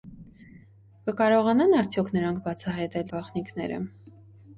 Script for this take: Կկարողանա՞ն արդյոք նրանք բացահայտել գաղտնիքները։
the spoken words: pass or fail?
pass